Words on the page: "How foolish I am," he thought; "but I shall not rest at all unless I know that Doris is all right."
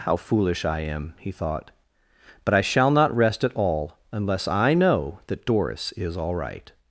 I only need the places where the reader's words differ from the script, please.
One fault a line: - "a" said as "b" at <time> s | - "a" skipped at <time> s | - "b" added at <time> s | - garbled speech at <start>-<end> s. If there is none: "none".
none